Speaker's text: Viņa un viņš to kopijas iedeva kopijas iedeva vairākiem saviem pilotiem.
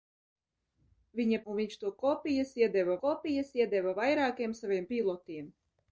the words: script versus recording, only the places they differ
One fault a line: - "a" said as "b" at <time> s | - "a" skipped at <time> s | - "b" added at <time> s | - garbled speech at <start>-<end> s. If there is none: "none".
none